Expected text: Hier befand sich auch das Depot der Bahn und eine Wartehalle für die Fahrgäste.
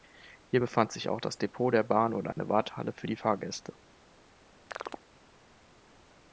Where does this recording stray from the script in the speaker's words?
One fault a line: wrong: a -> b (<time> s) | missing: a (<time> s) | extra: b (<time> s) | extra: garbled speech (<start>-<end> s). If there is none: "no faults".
no faults